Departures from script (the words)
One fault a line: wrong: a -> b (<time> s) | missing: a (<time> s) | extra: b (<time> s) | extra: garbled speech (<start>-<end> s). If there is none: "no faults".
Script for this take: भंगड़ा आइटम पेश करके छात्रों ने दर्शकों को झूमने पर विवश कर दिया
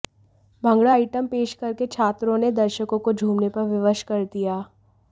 no faults